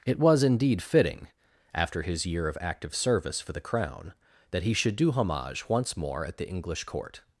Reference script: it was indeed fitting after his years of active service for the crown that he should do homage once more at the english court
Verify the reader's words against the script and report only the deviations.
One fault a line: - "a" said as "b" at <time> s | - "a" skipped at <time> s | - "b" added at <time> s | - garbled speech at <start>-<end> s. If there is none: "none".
- "years" said as "year" at 2.2 s